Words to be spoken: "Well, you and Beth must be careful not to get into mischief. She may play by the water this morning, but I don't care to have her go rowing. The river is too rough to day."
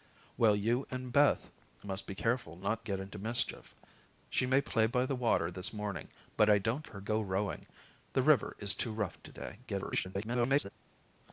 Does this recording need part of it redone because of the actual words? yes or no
yes